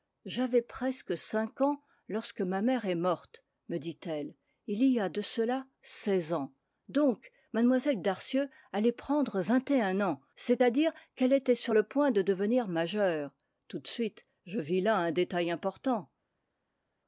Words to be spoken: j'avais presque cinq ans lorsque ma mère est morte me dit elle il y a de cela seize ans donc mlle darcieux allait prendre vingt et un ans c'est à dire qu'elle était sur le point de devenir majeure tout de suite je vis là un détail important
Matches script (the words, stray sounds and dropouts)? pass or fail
pass